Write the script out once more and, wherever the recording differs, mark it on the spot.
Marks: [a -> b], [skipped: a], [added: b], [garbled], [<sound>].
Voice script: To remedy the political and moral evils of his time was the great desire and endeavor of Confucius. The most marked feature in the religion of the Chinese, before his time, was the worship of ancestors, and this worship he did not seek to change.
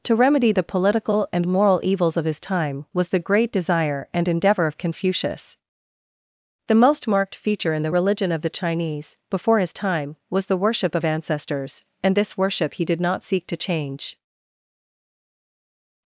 To remedy the political and moral evils of his time was the great desire and endeavor of Confucius. The most marked feature in the religion of the Chinese, before his time, was the worship of ancestors, and this worship he did not seek to change.